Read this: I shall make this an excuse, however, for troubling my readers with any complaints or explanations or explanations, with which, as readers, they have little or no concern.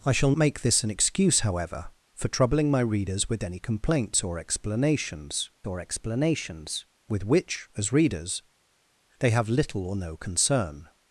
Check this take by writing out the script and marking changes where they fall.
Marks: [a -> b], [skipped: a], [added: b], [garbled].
I shall make this an excuse, however, for troubling my readers with any complaints or explanations or explanations, with which, as readers, they have little or no concern.